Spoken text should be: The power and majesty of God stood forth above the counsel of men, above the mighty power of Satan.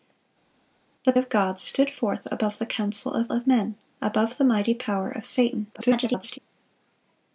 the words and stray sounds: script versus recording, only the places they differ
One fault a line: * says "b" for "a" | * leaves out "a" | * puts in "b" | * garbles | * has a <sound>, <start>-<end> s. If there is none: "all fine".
* leaves out "power and majesty"
* puts in "of"
* garbles